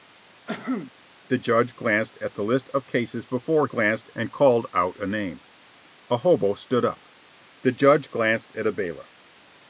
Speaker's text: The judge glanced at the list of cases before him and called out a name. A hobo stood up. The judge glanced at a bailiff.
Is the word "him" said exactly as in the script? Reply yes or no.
no